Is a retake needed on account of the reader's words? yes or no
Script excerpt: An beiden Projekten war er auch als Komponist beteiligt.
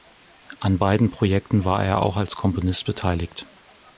no